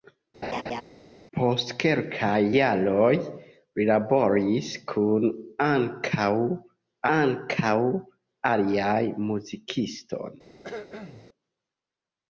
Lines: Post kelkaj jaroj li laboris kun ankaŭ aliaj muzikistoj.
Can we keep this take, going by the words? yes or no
no